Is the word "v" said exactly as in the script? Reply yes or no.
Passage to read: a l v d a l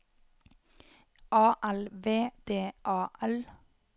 yes